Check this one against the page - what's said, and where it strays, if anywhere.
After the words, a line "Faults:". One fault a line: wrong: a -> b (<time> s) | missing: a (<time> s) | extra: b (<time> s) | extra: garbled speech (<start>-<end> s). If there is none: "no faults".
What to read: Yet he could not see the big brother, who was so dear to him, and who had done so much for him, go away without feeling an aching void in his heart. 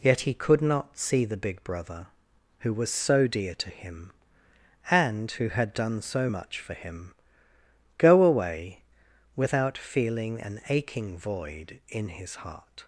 Yet he could not see the big brother, who was so dear to him, and who had done so much for him, go away without feeling an aching void in his heart.
Faults:
no faults